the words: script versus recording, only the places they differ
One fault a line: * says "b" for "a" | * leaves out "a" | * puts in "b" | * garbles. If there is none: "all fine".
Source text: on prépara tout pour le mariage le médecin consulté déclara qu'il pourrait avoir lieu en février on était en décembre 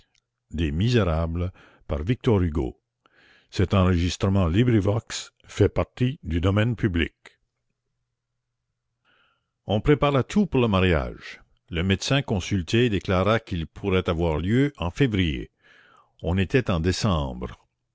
all fine